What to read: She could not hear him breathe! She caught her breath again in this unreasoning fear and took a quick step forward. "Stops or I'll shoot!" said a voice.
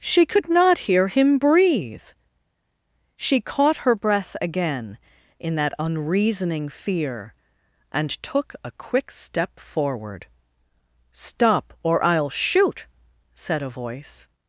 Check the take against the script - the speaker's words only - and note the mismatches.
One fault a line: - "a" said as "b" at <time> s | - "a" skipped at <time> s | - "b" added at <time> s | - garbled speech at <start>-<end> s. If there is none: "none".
- "this" said as "that" at 5.6 s
- "Stops" said as "Stop" at 11.1 s